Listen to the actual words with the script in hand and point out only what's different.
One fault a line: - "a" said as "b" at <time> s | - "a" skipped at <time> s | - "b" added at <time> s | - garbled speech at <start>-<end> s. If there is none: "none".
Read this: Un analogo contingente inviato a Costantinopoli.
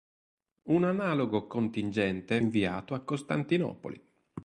none